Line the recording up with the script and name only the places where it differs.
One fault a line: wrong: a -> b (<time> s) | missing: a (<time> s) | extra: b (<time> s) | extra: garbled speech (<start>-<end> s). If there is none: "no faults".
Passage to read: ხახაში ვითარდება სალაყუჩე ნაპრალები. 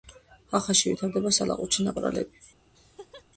no faults